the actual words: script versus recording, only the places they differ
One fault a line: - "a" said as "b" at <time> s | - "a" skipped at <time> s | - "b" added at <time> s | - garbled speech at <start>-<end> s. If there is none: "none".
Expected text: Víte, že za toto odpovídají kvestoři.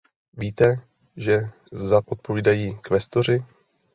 - "toto" skipped at 2.0 s